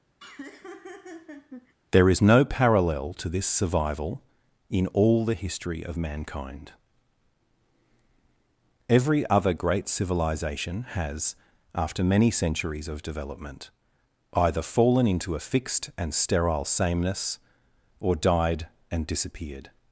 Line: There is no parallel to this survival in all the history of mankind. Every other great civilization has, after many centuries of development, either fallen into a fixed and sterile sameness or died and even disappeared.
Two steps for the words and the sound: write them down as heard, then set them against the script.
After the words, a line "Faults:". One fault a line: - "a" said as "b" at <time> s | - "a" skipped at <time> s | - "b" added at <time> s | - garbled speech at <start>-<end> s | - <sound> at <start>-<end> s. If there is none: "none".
There is no parallel to this survival in all the history of mankind. Every other great civilization has, after many centuries of development, either fallen into a fixed and sterile sameness or died and disappeared.
Faults:
- laugh at 0.2-1.7 s
- "even" skipped at 19.1 s